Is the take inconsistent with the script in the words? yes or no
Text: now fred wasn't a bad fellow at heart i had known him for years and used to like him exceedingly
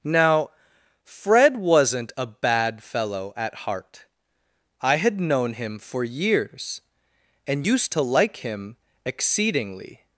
no